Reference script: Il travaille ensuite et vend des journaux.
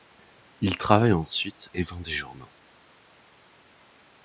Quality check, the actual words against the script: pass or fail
pass